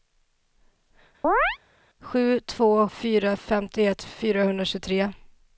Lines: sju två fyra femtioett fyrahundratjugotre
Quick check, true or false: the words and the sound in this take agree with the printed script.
false